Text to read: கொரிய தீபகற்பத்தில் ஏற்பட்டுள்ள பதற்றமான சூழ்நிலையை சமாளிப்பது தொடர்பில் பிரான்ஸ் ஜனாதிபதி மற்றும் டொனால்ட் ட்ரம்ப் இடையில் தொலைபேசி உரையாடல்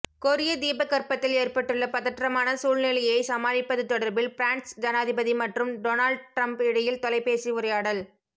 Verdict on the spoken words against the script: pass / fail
pass